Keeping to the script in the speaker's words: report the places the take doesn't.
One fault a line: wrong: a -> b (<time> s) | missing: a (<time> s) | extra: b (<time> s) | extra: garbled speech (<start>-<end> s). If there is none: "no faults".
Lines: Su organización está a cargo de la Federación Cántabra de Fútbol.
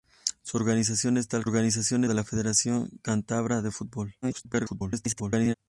wrong: cargo -> organización (1.4 s)
extra: garbled speech (4.2-5.5 s)